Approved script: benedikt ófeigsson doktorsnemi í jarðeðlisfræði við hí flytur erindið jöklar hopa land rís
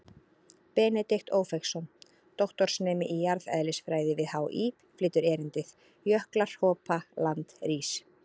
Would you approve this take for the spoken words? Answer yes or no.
yes